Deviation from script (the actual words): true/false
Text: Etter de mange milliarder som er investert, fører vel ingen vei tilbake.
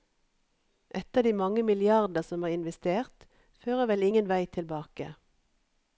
false